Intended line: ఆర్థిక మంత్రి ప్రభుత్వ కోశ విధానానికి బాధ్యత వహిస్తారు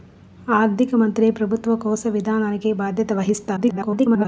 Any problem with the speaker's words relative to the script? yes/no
yes